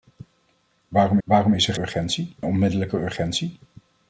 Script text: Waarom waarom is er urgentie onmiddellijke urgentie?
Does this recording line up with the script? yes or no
yes